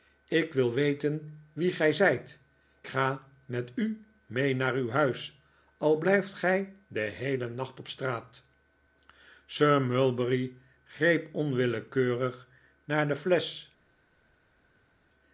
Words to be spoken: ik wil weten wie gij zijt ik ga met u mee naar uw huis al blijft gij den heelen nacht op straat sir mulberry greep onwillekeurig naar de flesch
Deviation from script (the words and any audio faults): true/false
true